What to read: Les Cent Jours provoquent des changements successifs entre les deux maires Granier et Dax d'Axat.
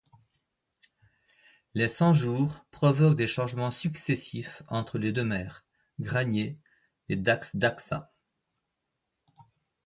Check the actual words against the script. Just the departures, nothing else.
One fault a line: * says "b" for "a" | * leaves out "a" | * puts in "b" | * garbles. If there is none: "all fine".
all fine